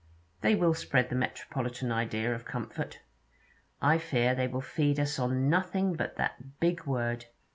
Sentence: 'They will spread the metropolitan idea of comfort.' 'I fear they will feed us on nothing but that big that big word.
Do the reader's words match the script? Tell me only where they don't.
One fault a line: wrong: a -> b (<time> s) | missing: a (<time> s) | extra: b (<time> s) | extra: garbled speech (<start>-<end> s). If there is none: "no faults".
missing: that big (6.8 s)